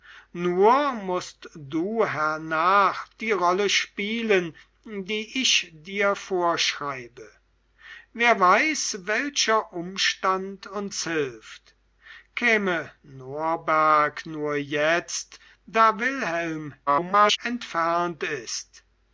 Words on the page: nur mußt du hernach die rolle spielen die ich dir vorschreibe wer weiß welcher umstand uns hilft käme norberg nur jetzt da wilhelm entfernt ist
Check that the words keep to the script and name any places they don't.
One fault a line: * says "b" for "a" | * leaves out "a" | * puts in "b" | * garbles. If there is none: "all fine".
* garbles